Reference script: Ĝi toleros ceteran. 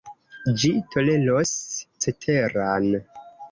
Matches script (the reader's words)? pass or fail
pass